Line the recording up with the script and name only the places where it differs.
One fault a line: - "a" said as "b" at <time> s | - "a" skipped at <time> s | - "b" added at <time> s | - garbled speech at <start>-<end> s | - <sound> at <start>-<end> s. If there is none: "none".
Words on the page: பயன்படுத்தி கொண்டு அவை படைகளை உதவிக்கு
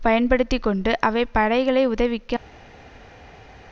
none